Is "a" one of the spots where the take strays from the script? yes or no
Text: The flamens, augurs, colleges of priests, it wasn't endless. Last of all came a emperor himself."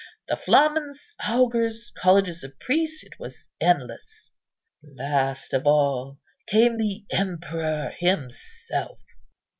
yes